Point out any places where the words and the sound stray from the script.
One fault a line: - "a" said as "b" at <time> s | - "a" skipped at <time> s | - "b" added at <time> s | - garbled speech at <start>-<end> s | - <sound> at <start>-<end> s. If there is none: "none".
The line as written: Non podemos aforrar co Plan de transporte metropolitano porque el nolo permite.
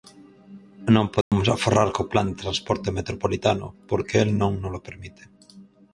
- dropout at 1.2-1.3 s
- "non" added at 4.4 s